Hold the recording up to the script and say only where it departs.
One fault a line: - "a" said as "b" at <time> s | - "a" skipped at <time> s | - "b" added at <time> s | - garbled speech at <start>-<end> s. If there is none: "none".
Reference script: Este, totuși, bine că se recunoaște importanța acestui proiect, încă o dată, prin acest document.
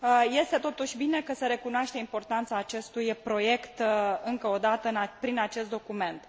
none